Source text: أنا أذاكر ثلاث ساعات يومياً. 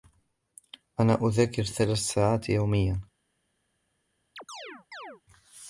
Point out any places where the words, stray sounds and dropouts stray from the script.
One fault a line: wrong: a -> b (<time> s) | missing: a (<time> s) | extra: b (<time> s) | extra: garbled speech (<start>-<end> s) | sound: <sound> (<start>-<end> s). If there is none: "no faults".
sound: chirp (4.4-5.2 s)